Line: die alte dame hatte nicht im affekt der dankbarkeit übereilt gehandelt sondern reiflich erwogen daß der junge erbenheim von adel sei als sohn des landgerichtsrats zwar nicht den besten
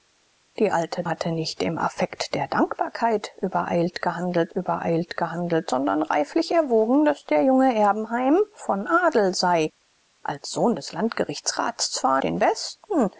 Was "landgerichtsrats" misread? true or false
false